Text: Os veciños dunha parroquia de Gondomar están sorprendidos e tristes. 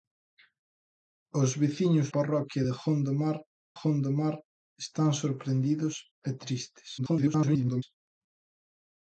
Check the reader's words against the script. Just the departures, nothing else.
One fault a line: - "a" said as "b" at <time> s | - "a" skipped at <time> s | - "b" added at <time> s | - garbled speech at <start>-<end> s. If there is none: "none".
- "dunha" skipped at 2.1 s
- "Gondomar" added at 3.8 s
- garbled speech at 7.0-7.8 s